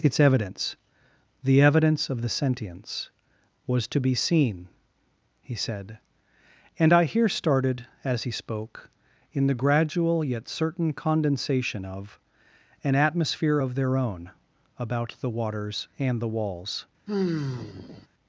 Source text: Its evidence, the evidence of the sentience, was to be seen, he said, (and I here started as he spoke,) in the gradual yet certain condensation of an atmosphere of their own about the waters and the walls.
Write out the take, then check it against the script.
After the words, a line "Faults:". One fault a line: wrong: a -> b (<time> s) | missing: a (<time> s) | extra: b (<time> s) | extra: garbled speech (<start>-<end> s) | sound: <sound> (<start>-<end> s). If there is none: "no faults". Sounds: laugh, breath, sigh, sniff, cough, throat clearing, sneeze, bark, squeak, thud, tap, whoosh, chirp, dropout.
Its evidence, the evidence of the sentience, was to be seen, he said, (and I here started as he spoke,) in the gradual yet certain condensation of an atmosphere of their own about the waters and the walls.
Faults:
sound: sigh (17.1-18.1 s)